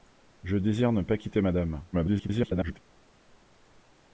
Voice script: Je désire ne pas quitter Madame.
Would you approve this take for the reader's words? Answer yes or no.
no